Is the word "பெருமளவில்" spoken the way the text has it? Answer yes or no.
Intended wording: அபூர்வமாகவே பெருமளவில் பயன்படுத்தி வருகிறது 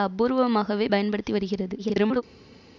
no